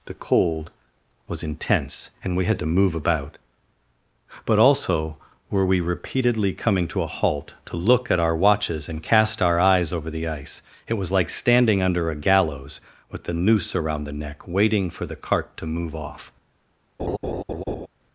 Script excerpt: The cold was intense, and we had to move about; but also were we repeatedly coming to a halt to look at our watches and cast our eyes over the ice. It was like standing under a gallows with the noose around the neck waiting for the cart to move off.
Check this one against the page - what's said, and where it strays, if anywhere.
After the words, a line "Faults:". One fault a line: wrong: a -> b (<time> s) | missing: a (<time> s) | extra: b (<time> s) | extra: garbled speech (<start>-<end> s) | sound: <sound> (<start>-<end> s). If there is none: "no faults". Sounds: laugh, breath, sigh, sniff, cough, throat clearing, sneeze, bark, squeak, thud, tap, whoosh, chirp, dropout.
The cold was intense, and we had to move about; but also were we repeatedly coming to a halt to look at our watches and cast our eyes over the ice. It was like standing under a gallows with the noose around the neck waiting for the cart to move off.
Faults:
sound: laugh (17.0-17.9 s)